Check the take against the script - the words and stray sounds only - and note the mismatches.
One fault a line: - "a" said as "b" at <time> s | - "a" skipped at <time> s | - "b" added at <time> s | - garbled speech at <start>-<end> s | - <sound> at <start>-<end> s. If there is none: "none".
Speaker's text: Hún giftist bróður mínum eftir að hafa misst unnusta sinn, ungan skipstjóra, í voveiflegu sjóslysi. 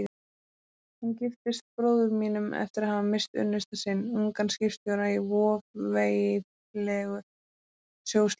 none